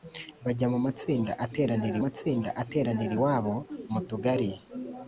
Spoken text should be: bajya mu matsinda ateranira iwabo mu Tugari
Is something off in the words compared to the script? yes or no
yes